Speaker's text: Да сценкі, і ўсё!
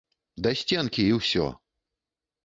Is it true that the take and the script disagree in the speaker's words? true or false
false